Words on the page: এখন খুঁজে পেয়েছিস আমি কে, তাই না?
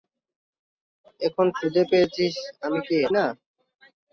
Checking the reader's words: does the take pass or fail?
fail